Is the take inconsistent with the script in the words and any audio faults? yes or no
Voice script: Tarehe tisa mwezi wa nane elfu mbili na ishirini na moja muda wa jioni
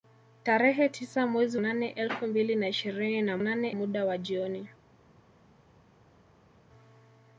yes